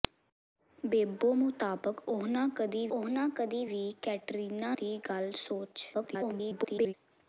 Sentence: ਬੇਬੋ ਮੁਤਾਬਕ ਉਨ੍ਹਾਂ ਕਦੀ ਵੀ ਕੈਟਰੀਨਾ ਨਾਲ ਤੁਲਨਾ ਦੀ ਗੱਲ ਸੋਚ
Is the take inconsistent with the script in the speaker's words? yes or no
yes